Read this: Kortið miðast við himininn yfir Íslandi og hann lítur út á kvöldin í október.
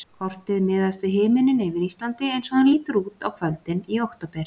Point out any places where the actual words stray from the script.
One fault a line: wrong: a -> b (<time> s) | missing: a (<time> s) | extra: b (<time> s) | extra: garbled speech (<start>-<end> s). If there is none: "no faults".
extra: eins (2.4 s)